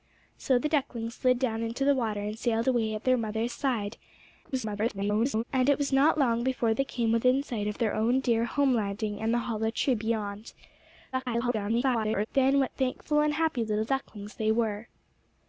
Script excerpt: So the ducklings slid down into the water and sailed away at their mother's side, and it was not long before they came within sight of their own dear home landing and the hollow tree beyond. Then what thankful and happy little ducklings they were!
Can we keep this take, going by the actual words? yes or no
no